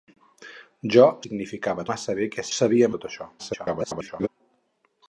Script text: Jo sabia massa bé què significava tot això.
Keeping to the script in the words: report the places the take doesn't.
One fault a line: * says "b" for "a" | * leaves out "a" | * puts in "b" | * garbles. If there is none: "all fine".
* says "significava" for "sabia"
* says "sabia" for "significava"
* garbles